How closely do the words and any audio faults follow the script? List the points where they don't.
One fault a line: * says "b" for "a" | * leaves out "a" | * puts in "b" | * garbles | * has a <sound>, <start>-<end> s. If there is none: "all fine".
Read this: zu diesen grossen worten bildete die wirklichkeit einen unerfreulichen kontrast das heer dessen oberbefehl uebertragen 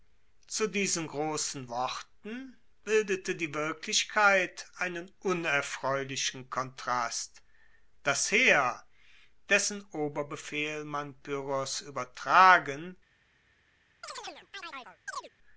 * puts in "man pyrrhos"
* has a chirp, 14.0-15.3 s